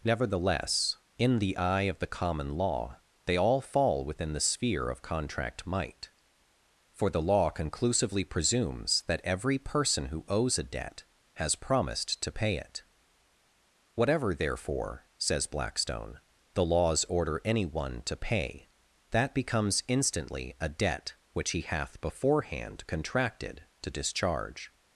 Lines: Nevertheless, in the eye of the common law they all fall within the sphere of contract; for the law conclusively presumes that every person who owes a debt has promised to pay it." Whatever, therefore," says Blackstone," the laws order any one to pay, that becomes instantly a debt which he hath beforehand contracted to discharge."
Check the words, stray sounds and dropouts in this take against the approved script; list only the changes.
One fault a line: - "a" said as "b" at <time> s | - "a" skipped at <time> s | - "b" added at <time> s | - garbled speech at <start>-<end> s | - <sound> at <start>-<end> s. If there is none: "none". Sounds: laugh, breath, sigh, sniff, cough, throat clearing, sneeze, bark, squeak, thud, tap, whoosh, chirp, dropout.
- "might" added at 5.7 s